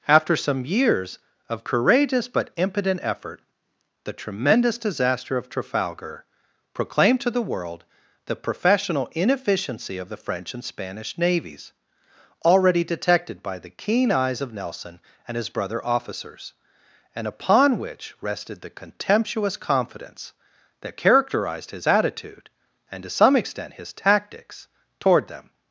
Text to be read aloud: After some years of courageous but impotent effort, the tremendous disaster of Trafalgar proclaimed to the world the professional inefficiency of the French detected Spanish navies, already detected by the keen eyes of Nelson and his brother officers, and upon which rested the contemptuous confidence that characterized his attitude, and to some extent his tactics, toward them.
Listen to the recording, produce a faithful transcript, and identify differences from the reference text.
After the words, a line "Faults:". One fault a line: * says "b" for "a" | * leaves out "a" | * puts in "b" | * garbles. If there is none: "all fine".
After some years of courageous but impotent effort, the tremendous disaster of Trafalgar proclaimed to the world the professional inefficiency of the French and Spanish navies, already detected by the keen eyes of Nelson and his brother officers, and upon which rested the contemptuous confidence that characterized his attitude, and to some extent his tactics, toward them.
Faults:
* says "and" for "detected"